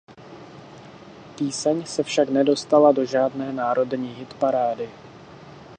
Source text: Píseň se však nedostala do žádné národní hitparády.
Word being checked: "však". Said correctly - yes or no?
yes